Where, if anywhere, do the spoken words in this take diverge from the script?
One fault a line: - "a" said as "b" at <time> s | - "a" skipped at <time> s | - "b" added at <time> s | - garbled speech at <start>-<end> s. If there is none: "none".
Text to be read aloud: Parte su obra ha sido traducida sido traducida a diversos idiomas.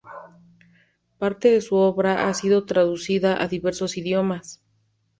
- "de" added at 1.5 s
- "sido traducida" skipped at 3.4 s